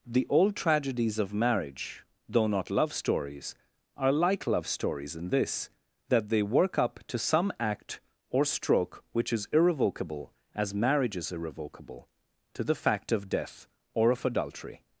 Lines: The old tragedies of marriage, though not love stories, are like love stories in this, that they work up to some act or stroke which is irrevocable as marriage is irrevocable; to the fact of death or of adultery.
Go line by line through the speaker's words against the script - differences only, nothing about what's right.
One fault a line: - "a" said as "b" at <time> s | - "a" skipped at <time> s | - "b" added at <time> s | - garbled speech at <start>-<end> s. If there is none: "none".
none